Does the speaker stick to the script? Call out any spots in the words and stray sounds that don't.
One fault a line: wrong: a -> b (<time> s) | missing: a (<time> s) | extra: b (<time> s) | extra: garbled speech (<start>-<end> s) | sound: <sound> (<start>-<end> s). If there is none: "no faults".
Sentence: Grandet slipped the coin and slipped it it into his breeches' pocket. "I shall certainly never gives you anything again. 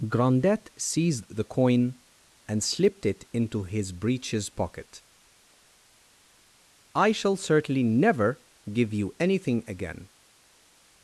wrong: slipped -> seized (0.8 s)
missing: it (3.3 s)
wrong: gives -> give (8.7 s)